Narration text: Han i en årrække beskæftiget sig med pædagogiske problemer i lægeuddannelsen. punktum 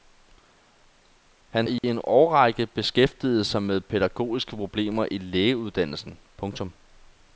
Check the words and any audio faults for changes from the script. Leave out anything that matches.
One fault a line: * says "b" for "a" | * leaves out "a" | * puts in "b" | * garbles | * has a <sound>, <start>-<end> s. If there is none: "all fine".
* has a dropout, 1.8-1.8 s